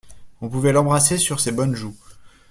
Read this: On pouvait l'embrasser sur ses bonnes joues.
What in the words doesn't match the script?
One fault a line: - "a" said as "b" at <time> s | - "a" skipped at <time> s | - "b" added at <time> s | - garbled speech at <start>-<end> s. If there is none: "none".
none